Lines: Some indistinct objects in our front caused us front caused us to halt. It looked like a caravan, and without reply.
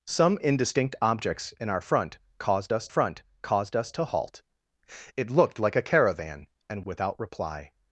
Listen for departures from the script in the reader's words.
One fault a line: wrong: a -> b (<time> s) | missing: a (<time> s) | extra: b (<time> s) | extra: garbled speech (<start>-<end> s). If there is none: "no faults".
no faults